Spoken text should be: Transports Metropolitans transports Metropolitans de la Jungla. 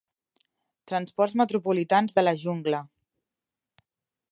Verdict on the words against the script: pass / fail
fail